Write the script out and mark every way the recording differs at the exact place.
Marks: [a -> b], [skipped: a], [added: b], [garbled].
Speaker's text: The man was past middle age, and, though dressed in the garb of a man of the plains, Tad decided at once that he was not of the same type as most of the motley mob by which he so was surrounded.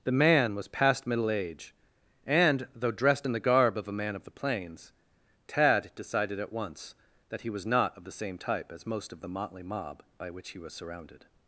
The man was past middle age, and, though dressed in the garb of a man of the plains, Tad decided at once that he was not of the same type as most of the motley mob by which he [skipped: so] was surrounded.